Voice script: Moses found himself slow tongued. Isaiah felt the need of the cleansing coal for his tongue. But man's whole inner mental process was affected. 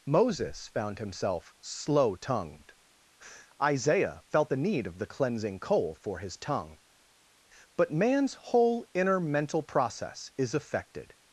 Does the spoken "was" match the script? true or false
false